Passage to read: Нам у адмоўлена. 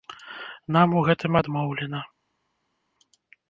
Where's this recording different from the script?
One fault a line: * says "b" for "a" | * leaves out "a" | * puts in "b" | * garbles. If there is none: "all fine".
* puts in "гэтым"